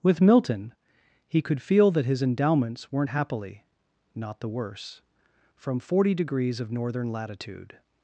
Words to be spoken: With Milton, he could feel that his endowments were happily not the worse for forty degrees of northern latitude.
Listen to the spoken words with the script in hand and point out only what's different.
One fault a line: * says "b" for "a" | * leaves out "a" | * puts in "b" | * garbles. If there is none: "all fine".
* says "weren't" for "were"
* says "from" for "for"